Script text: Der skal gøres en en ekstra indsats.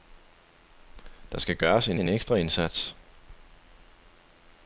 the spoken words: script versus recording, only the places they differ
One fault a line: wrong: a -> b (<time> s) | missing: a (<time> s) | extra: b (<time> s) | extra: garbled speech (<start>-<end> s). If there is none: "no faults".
no faults